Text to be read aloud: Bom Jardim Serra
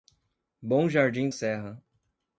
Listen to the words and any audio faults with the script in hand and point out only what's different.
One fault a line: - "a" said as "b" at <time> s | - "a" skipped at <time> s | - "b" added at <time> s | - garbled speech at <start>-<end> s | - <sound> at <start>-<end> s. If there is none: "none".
none